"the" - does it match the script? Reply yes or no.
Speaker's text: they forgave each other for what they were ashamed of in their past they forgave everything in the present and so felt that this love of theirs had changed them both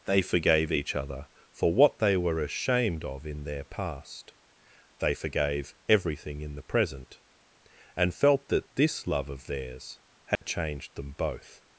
yes